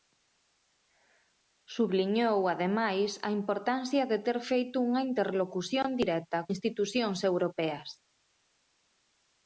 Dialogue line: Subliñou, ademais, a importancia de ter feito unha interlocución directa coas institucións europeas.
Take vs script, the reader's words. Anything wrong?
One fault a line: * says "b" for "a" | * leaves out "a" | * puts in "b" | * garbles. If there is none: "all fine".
* leaves out "coas"